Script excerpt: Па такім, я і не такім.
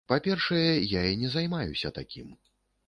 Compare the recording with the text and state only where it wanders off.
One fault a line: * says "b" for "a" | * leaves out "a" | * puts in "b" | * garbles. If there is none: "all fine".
* says "першае" for "такім"
* puts in "займаюся"